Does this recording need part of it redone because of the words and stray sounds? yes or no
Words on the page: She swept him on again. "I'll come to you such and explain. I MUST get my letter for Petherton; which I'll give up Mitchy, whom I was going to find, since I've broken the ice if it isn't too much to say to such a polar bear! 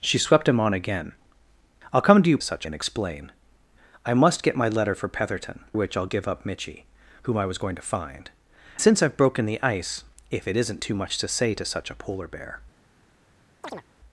yes